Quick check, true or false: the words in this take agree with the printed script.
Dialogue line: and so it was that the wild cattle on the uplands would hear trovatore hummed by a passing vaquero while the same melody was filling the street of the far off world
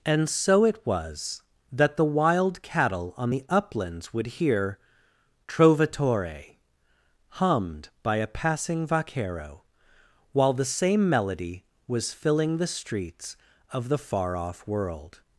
false